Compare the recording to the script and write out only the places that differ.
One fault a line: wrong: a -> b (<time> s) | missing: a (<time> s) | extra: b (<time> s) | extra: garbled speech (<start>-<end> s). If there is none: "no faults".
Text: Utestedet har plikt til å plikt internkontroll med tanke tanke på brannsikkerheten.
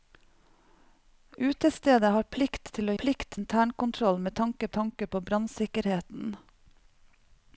no faults